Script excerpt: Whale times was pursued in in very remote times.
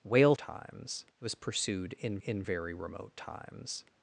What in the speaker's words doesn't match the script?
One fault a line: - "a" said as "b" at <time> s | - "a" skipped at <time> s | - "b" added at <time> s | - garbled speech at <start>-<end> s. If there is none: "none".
none